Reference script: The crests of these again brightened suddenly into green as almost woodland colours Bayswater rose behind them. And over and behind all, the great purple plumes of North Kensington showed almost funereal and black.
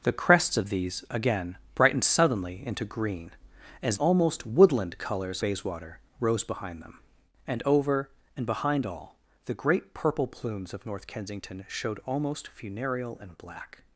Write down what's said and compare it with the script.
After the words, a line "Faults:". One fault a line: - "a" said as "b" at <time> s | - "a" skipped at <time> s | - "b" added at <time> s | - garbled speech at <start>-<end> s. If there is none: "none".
The crests of these again brightened suddenly into green as almost woodland colours Bayswater rose behind them. And over and behind all, the great purple plumes of North Kensington showed almost funereal and black.
Faults:
none